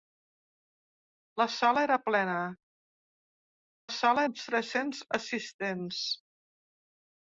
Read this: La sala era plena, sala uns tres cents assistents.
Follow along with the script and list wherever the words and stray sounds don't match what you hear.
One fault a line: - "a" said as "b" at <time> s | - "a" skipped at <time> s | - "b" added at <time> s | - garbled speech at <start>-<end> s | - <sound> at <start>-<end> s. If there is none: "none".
none